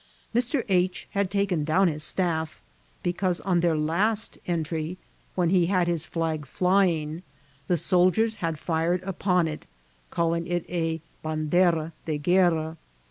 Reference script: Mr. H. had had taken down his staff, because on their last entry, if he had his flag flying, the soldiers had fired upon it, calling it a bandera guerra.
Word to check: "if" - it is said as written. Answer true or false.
false